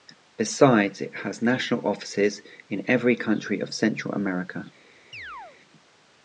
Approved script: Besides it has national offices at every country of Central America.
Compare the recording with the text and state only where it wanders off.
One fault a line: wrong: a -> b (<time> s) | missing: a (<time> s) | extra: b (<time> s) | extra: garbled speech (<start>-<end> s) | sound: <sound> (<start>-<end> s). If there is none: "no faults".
wrong: at -> in (2.7 s)
sound: chirp (5.1-5.6 s)